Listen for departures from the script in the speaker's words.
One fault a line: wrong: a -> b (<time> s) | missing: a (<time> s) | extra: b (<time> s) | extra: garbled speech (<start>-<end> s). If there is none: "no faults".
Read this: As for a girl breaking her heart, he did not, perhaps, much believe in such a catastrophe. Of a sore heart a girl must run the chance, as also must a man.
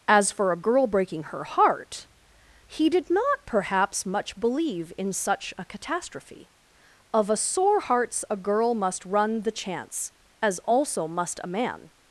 wrong: heart -> hearts (7.8 s)